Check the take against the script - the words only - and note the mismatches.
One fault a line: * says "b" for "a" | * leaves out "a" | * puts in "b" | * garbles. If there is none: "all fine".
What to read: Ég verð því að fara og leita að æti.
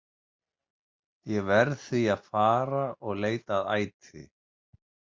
all fine